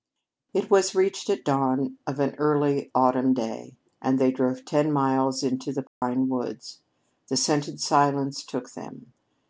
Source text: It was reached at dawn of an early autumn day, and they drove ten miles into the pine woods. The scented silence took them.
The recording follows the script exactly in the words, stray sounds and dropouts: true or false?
false